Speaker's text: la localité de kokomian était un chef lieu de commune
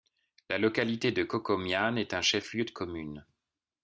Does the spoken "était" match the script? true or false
false